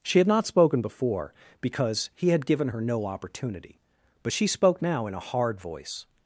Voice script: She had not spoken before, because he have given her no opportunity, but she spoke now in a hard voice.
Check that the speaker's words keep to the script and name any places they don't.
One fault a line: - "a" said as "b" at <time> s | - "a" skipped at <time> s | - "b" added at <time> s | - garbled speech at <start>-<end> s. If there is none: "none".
- "have" said as "had" at 2.3 s